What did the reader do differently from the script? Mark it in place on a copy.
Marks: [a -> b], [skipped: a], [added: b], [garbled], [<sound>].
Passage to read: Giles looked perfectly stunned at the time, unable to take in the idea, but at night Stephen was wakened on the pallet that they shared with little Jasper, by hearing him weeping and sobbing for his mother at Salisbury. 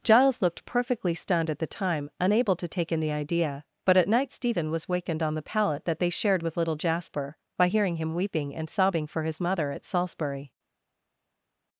Giles looked perfectly stunned at the time, unable to take in the idea, but at night Stephen was wakened on the pallet that they shared with little Jasper, by hearing him weeping and sobbing for his mother at Salisbury.